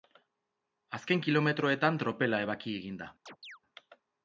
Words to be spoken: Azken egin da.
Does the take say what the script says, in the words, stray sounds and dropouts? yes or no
no